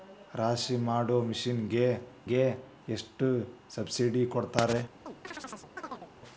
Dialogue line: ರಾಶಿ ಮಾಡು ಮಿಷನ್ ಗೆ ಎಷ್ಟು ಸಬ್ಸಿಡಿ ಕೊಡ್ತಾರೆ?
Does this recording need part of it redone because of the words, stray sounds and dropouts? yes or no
yes